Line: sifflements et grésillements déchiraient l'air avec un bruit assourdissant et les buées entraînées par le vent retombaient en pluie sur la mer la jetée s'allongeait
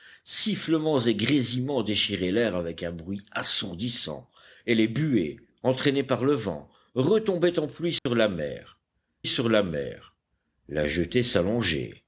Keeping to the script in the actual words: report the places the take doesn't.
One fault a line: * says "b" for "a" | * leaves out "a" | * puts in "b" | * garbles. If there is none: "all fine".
* puts in "sur la mer"